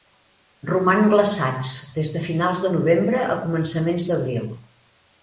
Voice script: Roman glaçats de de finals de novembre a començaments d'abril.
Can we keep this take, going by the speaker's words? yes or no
no